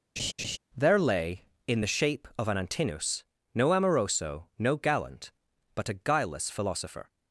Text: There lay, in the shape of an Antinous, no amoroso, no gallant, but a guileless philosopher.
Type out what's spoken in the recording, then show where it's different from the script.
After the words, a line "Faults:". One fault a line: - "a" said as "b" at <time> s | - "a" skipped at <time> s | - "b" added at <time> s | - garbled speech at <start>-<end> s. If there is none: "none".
There lay, in the shape of an Antinous, no amoroso, no gallant, but a guileless philosopher.
Faults:
none